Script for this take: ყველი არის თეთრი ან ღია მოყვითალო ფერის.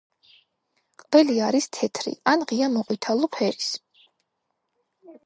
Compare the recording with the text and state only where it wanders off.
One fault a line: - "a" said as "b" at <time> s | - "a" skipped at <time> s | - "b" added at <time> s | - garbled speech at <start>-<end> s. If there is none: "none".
none